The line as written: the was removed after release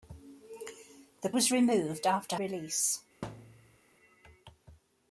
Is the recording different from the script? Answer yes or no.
no